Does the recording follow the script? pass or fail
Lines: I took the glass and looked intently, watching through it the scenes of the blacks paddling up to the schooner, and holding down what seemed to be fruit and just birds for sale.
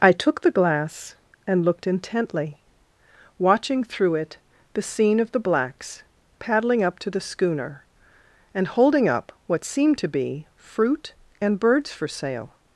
fail